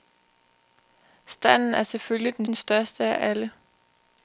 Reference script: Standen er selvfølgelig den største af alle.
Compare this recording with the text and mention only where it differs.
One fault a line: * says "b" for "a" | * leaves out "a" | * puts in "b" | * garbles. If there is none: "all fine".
* puts in "den"